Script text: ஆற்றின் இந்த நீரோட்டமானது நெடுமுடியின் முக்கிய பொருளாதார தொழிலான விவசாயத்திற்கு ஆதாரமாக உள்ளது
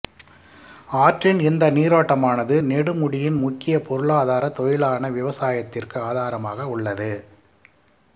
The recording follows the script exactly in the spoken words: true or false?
true